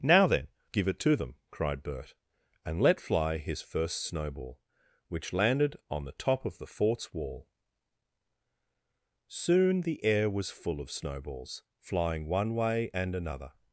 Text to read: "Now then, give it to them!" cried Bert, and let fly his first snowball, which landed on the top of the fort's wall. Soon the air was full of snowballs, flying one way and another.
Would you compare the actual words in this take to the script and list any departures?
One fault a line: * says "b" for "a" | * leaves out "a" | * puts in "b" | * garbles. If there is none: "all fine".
all fine